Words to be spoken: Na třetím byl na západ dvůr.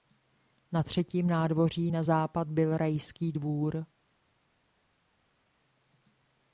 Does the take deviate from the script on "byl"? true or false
true